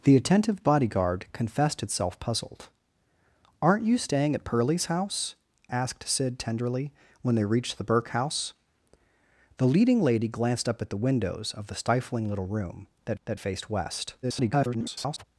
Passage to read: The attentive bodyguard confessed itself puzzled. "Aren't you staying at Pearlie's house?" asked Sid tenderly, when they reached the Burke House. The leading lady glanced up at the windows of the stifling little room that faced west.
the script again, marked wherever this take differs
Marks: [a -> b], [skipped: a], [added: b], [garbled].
The attentive bodyguard confessed itself puzzled. "Aren't you staying at Pearlie's house?" asked Sid tenderly, when they reached the Burke House. The leading lady glanced up at the windows of the stifling little room that [added: that] faced west. [garbled]